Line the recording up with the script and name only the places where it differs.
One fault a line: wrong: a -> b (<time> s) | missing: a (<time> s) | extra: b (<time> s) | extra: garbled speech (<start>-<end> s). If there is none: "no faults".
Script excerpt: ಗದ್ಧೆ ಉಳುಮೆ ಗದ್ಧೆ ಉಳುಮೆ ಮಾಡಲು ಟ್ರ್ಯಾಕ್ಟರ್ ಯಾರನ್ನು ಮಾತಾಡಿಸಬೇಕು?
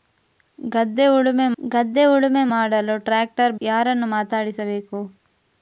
no faults